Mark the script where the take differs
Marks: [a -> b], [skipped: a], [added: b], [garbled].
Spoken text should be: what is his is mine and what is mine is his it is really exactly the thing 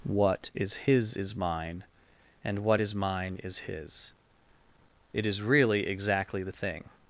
what is his is mine and what is mine is his it is really exactly the thing